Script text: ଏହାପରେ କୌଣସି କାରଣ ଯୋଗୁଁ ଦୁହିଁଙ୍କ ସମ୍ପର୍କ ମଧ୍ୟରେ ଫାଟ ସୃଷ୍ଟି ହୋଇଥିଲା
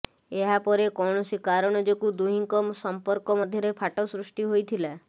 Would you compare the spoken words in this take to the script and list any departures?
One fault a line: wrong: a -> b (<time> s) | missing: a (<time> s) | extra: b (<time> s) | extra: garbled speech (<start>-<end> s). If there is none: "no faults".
no faults